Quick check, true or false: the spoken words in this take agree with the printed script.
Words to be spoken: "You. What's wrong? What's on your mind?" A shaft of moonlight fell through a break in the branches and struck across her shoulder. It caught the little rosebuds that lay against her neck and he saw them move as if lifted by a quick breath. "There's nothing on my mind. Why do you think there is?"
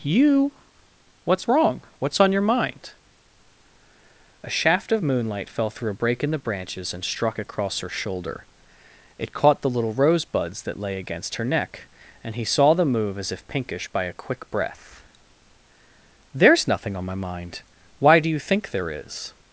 false